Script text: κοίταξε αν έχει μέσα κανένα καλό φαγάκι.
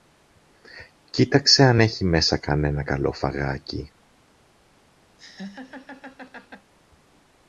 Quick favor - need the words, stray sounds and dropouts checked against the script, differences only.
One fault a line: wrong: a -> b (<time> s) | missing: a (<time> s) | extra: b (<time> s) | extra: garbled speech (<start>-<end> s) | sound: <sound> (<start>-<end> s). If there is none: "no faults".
sound: laugh (5.2-6.7 s)